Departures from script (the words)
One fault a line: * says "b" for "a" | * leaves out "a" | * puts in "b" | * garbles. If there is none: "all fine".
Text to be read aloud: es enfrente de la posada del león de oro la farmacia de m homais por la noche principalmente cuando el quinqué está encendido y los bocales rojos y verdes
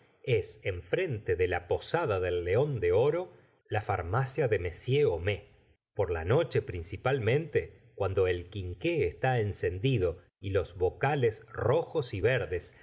all fine